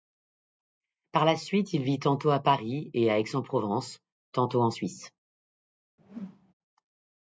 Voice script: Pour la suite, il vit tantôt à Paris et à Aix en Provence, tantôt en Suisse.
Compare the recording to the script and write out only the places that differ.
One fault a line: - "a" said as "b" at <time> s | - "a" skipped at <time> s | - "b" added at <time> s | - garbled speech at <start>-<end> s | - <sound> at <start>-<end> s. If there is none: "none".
- "Pour" said as "Par" at 1.1 s
- whoosh at 6.0-6.5 s